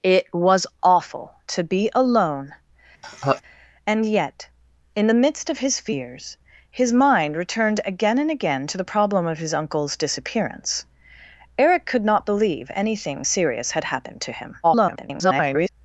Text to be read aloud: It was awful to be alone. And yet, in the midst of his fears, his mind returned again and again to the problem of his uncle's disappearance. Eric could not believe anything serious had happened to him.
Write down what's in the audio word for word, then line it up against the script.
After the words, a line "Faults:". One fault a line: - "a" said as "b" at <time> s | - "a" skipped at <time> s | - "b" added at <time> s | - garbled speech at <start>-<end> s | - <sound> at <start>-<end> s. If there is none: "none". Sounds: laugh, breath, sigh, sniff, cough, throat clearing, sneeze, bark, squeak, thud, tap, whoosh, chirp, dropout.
It was awful to be alone. And yet, in the midst of his fears, his mind returned again and again to the problem of his uncle's disappearance. Eric could not believe anything serious had happened to him. [garbled]
Faults:
- laugh at 3.0-3.4 s
- garbled speech at 14.6-15.7 s